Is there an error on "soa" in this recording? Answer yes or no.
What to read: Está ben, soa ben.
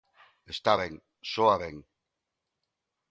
no